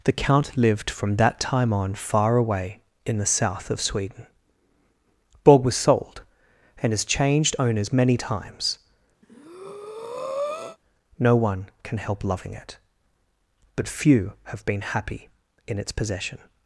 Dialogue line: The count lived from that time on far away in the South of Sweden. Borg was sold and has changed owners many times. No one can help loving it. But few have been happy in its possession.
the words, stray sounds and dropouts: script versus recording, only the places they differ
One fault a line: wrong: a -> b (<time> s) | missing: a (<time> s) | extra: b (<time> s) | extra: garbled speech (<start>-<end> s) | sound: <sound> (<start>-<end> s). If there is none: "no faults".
sound: breath (9.2-10.8 s)